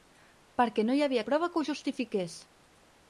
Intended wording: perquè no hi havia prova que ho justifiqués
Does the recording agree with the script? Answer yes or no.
yes